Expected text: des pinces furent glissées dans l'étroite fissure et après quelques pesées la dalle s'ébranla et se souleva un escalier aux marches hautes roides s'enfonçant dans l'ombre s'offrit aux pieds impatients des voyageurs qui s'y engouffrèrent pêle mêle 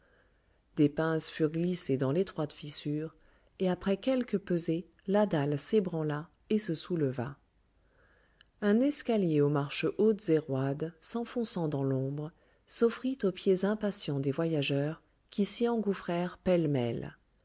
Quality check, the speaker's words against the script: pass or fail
fail